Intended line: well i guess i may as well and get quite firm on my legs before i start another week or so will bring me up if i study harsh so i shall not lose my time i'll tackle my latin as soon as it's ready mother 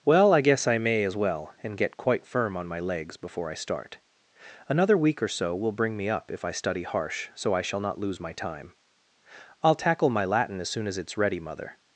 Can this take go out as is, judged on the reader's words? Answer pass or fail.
pass